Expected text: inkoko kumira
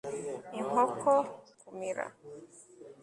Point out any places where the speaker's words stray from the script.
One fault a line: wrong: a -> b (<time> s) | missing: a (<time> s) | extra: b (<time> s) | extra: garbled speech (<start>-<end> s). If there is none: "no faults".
no faults